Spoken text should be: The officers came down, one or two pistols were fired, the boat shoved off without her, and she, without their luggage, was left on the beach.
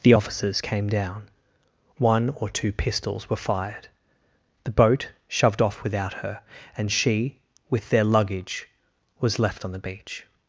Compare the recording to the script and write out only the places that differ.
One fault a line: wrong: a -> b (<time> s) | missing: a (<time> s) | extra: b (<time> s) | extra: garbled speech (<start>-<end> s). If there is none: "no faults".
wrong: without -> with (7.7 s)